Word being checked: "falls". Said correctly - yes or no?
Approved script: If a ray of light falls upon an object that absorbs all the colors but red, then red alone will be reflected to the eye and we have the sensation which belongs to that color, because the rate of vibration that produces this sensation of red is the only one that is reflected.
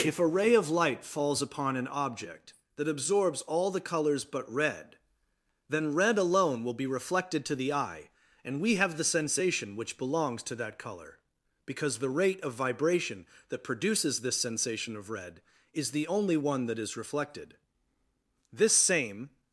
yes